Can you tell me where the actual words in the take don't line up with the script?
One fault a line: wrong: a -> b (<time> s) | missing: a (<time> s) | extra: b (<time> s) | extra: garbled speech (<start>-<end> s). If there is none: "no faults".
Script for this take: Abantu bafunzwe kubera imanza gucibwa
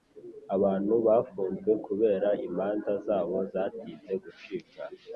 extra: zabo zatinze (3.0 s)